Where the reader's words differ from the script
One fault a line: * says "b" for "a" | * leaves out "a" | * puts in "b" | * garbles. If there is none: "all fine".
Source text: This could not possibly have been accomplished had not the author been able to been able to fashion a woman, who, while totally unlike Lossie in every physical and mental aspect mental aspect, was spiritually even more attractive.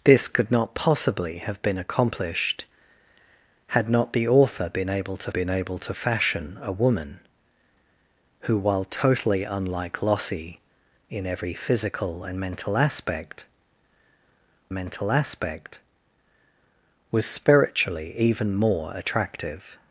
all fine